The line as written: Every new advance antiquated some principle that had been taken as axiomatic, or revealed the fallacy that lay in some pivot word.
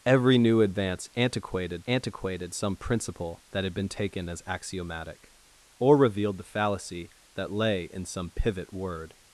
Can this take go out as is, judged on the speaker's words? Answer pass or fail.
fail